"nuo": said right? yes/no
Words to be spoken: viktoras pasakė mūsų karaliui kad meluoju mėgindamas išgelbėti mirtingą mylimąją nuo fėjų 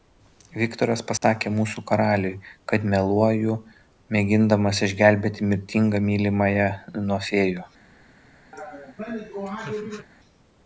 yes